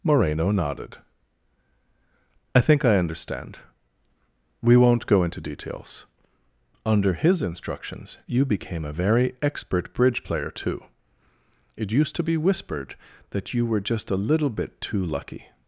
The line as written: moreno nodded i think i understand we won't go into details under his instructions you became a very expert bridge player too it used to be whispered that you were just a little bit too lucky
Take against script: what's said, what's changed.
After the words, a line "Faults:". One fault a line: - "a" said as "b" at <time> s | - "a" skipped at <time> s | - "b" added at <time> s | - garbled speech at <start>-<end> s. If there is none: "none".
moreno nodded i think i understand we won't go into details under his instructions you became a very expert bridge player too it used to be whispered that you were just a little bit too lucky
Faults:
none